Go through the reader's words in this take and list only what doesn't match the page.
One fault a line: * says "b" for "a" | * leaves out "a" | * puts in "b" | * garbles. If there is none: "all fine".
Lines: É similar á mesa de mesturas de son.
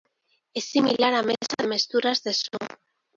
all fine